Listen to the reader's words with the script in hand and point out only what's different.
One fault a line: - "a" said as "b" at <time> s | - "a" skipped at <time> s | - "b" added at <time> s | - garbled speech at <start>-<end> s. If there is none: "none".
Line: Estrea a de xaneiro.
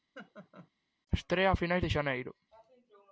- "finais" added at 1.5 s